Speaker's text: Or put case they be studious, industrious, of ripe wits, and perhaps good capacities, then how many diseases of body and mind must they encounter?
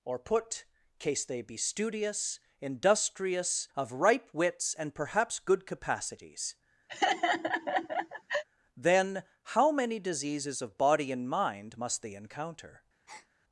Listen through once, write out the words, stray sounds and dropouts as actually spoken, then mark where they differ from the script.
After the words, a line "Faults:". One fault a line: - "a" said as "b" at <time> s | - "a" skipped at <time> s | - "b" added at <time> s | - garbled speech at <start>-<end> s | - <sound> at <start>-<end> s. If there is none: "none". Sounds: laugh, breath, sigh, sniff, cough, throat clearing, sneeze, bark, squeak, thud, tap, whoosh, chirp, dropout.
Or put case they be studious, industrious, of ripe wits, and perhaps good capacities, then how many diseases of body and mind must they encounter?
Faults:
- laugh at 6.9-8.4 s
- breath at 13.1-13.3 s